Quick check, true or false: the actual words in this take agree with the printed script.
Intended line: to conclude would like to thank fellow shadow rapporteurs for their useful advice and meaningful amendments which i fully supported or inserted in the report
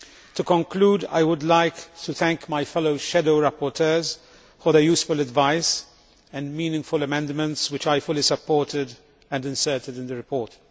false